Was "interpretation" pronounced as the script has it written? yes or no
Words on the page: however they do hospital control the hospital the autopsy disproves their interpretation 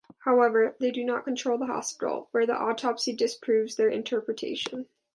yes